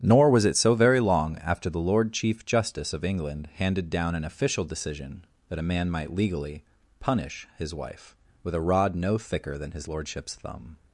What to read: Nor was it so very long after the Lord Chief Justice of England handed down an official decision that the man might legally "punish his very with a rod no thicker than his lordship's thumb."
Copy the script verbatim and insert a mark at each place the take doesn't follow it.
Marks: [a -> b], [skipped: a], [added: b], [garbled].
Nor was it so very long after the Lord Chief Justice of England handed down an official decision that [the -> a] man might legally "punish his [very -> wife] with a rod no thicker than his lordship's thumb."